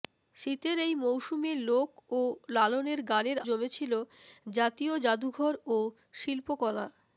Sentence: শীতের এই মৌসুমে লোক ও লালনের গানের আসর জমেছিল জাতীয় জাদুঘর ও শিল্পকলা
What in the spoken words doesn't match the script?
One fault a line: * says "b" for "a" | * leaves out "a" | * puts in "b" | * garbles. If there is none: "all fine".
* leaves out "আসর"